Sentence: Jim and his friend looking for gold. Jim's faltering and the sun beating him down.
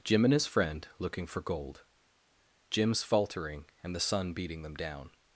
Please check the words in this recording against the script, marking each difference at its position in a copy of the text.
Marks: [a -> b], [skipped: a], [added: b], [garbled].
Jim and his friend looking for gold. Jim's faltering and the sun beating [him -> them] down.